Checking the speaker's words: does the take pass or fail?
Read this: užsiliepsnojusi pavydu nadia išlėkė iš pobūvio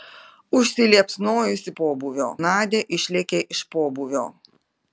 fail